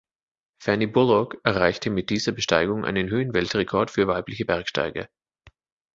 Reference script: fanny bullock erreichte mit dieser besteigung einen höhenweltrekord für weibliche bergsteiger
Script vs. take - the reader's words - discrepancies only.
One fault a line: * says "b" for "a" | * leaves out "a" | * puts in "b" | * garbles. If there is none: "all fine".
all fine